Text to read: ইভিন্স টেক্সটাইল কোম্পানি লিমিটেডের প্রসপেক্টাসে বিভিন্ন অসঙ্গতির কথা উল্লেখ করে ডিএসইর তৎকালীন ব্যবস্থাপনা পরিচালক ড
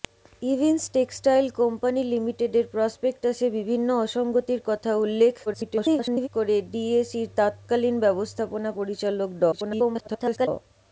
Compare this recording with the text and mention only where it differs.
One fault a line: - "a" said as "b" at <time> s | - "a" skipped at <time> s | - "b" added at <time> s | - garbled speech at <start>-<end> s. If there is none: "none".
- garbled speech at 5.5-6.3 s
- garbled speech at 9.5-10.5 s